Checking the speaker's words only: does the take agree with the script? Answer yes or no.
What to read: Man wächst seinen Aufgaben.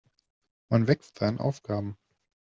yes